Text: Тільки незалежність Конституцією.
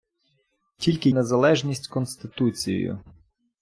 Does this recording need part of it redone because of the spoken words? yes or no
no